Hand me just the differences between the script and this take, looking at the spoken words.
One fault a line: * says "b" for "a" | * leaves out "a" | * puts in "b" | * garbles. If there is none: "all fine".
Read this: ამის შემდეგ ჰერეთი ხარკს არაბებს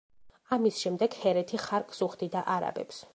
* puts in "უხდიდა"